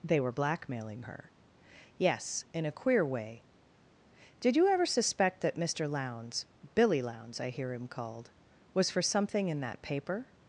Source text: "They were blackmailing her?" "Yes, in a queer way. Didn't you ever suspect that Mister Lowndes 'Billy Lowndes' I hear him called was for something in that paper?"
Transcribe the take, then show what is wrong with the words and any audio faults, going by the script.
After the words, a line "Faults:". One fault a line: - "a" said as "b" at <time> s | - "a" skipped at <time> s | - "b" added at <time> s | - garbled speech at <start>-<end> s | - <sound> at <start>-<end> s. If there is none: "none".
"They were blackmailing her?" "Yes, in a queer way. Did you ever suspect that Mister Lowndes 'Billy Lowndes' I hear him called was for something in that paper?"
Faults:
- "Didn't" said as "Did" at 4.4 s